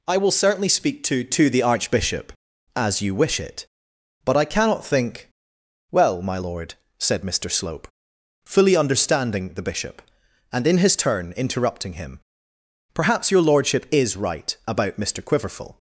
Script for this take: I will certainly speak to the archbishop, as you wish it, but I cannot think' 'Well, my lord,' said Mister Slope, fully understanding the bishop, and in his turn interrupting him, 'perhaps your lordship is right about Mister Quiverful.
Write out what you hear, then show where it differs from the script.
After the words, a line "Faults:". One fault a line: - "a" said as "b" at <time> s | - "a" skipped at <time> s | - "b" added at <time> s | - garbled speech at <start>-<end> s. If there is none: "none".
I will certainly speak to to the archbishop, as you wish it, but I cannot think' 'Well, my lord,' said Mister Slope, fully understanding the bishop, and in his turn interrupting him, 'perhaps your lordship is right about Mister Quiverful.
Faults:
- "to" added at 1.2 s